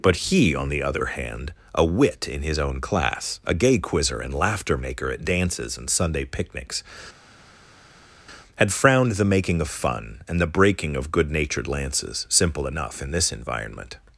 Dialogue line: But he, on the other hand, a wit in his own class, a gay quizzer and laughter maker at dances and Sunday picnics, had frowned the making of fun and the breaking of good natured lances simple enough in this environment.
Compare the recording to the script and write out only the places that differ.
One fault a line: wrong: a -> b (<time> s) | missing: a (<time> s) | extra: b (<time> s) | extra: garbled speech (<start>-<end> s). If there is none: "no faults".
no faults